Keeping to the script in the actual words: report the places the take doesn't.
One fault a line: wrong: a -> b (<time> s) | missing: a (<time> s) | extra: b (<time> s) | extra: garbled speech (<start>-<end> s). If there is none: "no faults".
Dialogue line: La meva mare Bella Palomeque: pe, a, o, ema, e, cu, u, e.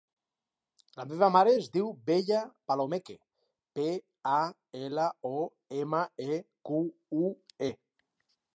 extra: es diu (1.5 s)
extra: ela (4.8 s)